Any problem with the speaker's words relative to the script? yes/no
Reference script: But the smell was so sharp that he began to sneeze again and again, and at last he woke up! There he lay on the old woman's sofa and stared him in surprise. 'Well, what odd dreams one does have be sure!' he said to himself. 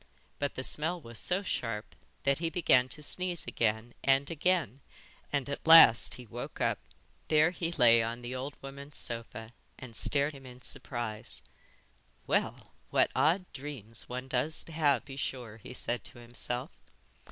no